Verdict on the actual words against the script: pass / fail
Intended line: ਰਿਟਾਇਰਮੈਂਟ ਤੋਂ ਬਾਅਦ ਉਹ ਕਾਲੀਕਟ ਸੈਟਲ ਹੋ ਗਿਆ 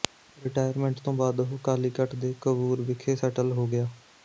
fail